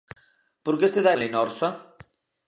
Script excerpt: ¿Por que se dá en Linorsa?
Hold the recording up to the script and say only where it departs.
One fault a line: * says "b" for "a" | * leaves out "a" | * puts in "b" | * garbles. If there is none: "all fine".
all fine